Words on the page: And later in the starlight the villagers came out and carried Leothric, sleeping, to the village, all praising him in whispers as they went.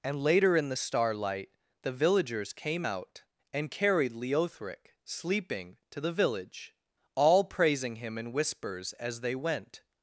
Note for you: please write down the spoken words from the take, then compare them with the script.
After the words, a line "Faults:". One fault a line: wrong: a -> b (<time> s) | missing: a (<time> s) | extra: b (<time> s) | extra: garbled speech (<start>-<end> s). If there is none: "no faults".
And later in the starlight the villagers came out and carried Leothric, sleeping, to the village, all praising him in whispers as they went.
Faults:
no faults